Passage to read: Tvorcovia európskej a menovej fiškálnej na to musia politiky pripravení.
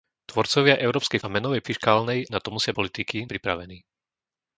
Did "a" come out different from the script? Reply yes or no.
no